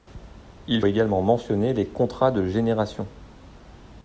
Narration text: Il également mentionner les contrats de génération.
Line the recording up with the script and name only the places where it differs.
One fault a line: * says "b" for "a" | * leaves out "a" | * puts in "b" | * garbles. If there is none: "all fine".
all fine